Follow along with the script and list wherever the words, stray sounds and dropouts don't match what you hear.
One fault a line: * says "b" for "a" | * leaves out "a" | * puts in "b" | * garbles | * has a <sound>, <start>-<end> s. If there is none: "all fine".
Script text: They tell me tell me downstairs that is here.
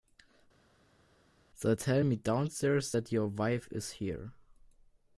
* says "downstairs that your wife" for "tell me downstairs that"